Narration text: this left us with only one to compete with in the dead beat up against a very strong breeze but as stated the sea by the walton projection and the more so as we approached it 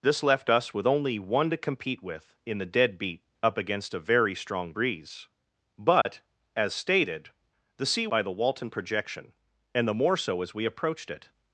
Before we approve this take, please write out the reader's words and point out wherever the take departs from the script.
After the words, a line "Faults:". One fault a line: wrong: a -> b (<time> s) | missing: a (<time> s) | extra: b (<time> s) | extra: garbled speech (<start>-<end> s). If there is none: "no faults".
this left us with only one to compete with in the dead beat up against a very strong breeze but as stated the sea by the walton projection and the more so as we approached it
Faults:
no faults